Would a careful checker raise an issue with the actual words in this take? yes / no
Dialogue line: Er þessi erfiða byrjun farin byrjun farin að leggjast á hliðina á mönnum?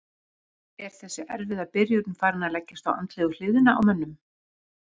yes